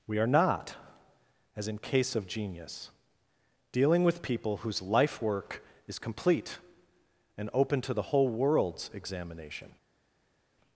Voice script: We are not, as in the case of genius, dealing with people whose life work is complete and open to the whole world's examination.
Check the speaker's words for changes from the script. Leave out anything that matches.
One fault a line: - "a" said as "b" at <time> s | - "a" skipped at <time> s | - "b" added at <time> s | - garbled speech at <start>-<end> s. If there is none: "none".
- "the" skipped at 1.8 s